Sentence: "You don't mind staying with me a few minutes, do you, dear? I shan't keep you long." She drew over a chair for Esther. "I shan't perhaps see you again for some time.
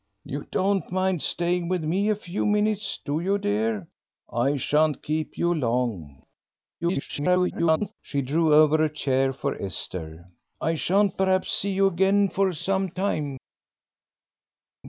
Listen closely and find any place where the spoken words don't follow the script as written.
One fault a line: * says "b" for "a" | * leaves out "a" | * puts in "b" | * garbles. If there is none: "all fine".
* garbles